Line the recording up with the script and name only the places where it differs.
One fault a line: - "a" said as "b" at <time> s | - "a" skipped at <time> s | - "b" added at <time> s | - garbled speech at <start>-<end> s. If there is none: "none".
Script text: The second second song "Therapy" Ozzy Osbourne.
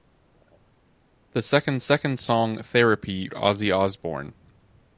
none